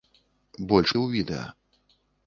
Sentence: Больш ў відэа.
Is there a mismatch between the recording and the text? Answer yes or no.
no